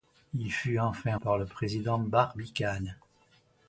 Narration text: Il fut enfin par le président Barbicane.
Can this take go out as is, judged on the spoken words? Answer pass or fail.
pass